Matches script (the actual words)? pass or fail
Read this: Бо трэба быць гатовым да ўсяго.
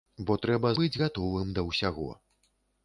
pass